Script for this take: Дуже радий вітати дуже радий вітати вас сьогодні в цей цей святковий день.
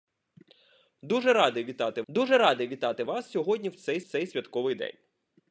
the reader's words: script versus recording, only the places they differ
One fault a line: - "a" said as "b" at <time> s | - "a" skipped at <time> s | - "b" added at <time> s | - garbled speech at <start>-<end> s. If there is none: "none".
none